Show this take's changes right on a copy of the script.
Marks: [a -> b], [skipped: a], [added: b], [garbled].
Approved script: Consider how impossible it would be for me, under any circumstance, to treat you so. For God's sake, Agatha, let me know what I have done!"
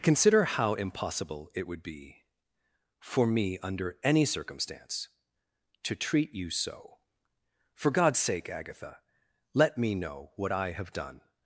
Consider how impossible it would be for me, under any circumstance, to treat you so. For God's sake, Agatha, let me know what I have done!"